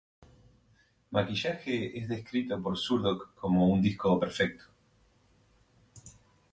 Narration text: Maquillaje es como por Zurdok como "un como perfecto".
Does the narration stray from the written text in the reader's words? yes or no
yes